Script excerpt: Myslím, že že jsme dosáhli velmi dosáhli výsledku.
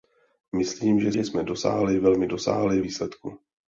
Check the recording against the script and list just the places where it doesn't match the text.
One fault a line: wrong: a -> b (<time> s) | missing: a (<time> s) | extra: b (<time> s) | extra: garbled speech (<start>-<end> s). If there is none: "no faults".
no faults